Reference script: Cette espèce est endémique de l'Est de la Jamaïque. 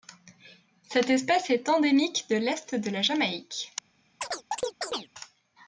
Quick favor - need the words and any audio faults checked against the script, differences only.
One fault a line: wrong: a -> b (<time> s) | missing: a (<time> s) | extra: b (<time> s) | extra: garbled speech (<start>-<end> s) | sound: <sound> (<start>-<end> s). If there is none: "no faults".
sound: chirp (4.2-5.1 s)